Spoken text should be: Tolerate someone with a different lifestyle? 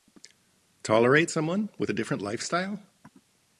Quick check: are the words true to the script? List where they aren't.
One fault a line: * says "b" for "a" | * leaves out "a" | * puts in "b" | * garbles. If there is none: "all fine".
all fine